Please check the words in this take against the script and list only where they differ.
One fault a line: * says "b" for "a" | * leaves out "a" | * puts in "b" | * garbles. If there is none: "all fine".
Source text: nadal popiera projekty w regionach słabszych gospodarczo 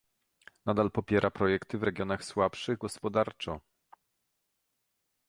all fine